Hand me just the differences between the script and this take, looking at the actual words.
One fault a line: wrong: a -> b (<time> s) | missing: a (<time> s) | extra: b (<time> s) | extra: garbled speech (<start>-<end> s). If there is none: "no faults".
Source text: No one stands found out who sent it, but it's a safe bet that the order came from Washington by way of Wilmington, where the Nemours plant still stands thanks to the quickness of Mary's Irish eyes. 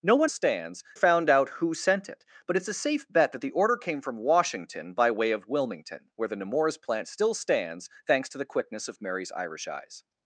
no faults